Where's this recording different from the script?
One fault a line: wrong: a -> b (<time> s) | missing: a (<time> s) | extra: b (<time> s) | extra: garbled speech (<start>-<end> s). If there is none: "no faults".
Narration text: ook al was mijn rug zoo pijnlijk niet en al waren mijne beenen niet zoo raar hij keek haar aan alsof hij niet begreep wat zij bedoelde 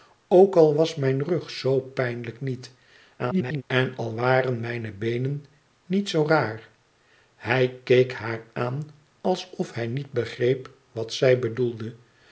extra: garbled speech (3.2-3.6 s)